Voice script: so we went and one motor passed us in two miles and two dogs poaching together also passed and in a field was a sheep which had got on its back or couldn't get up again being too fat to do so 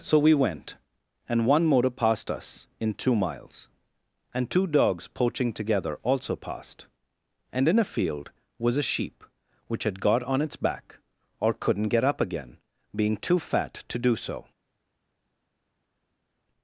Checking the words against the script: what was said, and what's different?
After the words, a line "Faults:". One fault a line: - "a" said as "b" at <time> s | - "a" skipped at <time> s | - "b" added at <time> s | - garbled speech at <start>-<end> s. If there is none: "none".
so we went and one motor passed us in two miles and two dogs poaching together also passed and in a field was a sheep which had got on its back or couldn't get up again being too fat to do so
Faults:
none